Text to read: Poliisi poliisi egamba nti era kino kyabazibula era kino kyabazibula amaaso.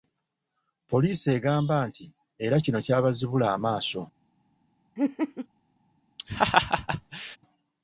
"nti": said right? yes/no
yes